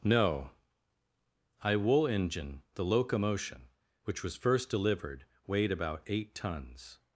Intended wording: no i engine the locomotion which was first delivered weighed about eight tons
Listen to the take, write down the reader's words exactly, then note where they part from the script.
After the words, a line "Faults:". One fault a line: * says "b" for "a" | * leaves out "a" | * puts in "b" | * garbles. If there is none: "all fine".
no i wool engine the locomotion which was first delivered weighed about eight tons
Faults:
* puts in "wool"